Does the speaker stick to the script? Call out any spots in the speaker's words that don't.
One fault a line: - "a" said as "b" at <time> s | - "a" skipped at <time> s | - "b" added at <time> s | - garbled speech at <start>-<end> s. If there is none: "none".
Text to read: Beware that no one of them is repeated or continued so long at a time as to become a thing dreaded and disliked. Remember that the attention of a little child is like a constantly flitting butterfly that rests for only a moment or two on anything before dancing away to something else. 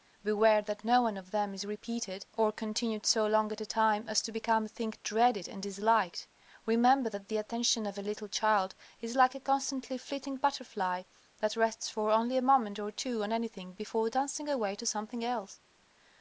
none